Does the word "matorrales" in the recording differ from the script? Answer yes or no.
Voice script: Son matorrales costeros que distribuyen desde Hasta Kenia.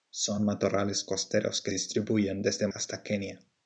no